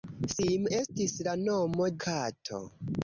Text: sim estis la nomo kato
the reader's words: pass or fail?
pass